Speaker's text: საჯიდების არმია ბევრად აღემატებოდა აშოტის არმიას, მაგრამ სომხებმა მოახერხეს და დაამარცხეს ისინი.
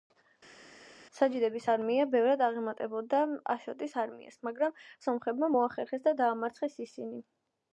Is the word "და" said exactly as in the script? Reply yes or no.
yes